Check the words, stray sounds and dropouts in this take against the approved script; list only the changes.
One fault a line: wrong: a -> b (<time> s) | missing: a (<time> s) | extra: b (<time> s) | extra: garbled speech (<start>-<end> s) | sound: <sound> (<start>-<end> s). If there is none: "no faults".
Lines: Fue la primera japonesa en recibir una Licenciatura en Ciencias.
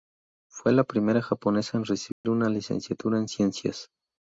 sound: dropout (2.1-2.2 s)